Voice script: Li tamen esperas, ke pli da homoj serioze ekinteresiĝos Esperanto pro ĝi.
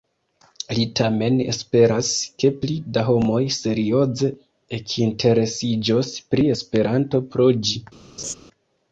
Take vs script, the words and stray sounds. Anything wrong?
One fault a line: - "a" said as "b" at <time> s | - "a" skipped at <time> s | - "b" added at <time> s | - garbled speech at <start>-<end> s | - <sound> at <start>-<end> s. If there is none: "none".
- "pri" added at 6.3 s
- laugh at 8.2-8.3 s